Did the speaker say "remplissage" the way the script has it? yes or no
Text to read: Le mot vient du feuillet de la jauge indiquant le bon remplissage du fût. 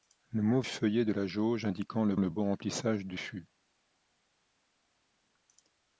yes